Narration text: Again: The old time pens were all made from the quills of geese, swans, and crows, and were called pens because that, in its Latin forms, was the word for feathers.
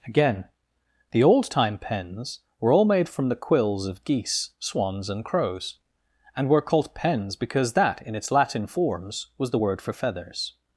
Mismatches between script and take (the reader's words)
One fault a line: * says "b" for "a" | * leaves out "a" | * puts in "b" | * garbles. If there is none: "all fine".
all fine